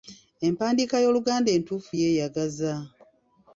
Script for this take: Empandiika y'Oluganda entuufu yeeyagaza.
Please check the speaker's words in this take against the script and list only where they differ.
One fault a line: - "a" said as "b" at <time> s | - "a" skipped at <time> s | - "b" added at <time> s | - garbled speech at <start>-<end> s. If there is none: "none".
none